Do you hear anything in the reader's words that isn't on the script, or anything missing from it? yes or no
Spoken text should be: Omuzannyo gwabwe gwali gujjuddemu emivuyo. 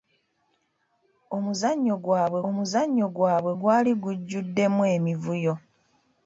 yes